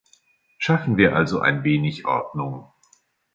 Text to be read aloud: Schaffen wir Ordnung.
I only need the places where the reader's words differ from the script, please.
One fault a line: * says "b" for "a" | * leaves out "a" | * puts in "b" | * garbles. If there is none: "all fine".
* puts in "also ein wenig"